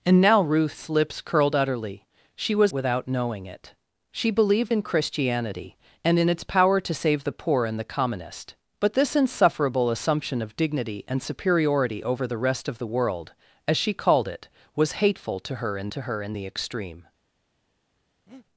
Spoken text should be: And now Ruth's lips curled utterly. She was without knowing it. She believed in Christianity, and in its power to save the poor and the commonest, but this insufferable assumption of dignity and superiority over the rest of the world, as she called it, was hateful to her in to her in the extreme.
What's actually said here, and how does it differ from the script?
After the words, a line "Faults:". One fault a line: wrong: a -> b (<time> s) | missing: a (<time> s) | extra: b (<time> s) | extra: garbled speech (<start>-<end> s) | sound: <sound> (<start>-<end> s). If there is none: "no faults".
And now Ruth's lips curled utterly. She was without knowing it. She believed in Christianity, and in its power to save the poor and the commonest, but this insufferable assumption of dignity and superiority over the rest of the world, as she called it, was hateful to her in to her in the extreme.
Faults:
sound: breath (18.3-18.5 s)